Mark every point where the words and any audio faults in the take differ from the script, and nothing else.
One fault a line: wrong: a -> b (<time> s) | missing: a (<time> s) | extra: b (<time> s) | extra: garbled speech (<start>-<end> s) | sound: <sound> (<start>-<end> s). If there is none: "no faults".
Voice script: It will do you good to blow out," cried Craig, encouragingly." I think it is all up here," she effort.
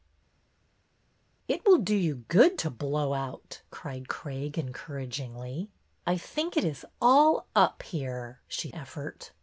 no faults